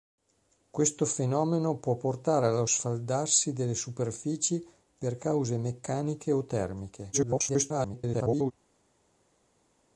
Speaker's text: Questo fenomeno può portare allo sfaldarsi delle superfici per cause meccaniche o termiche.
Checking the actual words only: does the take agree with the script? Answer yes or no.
no